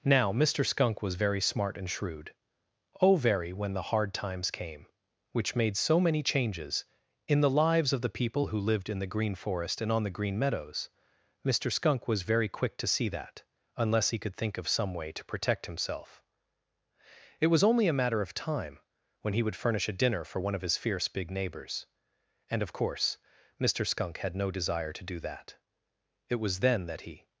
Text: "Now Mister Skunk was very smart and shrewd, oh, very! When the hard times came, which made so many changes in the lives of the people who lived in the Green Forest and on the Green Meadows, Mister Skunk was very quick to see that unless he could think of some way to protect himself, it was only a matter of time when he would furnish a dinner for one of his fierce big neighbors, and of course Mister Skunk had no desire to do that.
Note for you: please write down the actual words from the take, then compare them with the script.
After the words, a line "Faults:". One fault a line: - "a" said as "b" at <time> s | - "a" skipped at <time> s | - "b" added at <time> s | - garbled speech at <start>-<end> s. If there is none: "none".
"Now Mister Skunk was very smart and shrewd, oh, very! When the hard times came, which made so many changes in the lives of the people who lived in the Green Forest and on the Green Meadows, Mister Skunk was very quick to see that unless he could think of some way to protect himself, it was only a matter of time when he would furnish a dinner for one of his fierce big neighbors, and of course Mister Skunk had no desire to do that. It was then that he
Faults:
- "It was then that he" added at 26.3 s